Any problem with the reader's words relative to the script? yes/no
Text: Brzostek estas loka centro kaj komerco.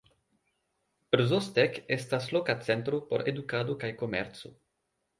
yes